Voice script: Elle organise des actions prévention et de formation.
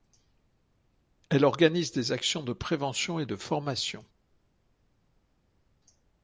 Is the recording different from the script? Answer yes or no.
yes